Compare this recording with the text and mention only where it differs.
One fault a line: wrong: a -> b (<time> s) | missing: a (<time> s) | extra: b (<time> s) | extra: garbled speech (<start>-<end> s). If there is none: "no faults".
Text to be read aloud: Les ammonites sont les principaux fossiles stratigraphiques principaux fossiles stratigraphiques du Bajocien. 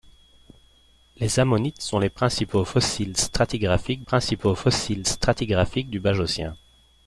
no faults